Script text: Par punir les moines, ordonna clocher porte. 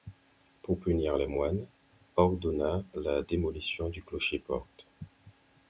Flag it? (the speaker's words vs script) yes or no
yes